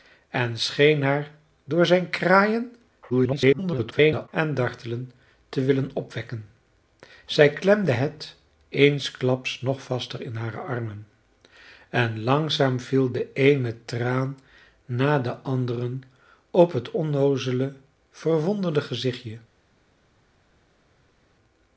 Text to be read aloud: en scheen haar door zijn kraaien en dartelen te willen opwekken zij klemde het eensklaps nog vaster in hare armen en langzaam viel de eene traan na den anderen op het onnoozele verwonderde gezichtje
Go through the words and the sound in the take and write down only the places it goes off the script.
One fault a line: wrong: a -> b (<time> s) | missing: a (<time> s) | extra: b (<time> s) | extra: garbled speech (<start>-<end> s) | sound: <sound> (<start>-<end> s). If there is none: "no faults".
extra: garbled speech (3.1-4.3 s)